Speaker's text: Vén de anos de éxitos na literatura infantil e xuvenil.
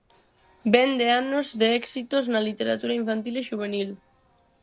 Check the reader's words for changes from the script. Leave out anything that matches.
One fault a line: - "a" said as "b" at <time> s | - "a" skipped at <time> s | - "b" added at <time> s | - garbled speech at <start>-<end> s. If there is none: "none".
none